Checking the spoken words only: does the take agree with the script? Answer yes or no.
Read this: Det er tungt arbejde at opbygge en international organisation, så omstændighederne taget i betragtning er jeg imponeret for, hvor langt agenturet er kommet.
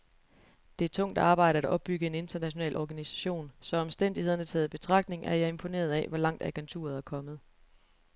no